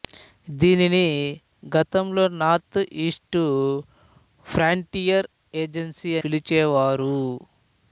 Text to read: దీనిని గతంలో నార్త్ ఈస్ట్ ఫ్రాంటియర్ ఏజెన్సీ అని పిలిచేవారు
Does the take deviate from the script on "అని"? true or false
true